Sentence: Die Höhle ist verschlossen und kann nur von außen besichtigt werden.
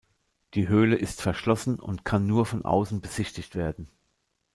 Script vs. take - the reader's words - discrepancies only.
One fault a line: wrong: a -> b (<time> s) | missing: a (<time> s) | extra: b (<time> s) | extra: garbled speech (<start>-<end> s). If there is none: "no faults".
no faults